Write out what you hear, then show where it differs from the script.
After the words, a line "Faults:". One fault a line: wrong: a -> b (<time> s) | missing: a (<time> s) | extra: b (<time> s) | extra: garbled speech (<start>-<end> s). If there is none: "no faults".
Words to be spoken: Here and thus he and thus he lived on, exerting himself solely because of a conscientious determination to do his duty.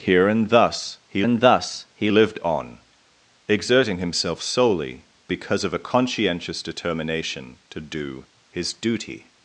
Here and thus he and thus he lived on, exerting himself solely because of a conscientious determination to do his duty.
Faults:
no faults